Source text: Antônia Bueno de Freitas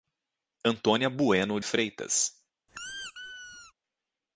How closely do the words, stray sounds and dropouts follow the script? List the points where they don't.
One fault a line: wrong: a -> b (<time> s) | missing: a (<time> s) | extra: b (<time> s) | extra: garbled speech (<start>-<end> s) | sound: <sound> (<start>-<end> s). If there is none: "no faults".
missing: de (1.6 s)
sound: squeak (2.7-3.7 s)